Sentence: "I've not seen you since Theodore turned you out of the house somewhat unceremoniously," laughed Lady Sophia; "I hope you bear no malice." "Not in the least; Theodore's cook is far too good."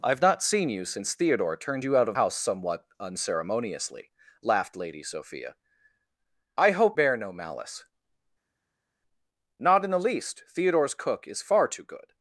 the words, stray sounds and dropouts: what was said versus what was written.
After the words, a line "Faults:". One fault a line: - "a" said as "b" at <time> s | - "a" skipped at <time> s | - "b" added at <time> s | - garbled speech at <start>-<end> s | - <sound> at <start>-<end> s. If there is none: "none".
"I've not seen you since Theodore turned you out of house somewhat unceremoniously," laughed Lady Sophia; "I hope bear no malice." "Not in the least; Theodore's cook is far too good."
Faults:
- "the" skipped at 2.2 s
- "you" skipped at 7.0 s